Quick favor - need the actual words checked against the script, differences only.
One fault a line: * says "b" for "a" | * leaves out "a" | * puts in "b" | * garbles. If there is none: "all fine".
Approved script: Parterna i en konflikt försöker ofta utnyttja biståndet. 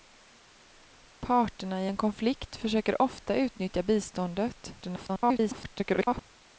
* garbles